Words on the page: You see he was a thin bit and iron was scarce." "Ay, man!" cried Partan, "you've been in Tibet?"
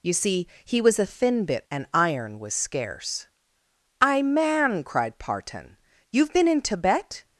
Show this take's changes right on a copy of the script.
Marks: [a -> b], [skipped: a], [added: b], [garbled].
You see he was a thin bit and iron was scarce." "Ay, man!" cried Partan, "you've been in Tibet?"